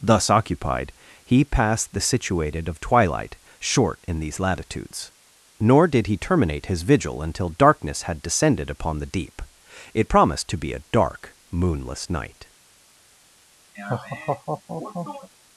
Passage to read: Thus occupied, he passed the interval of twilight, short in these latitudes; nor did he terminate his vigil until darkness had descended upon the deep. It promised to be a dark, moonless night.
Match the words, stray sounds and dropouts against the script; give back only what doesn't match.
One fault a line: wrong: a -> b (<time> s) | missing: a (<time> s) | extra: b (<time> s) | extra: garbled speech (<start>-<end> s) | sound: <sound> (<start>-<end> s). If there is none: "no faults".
wrong: interval -> situated (2.0 s)
sound: laugh (13.7-15.3 s)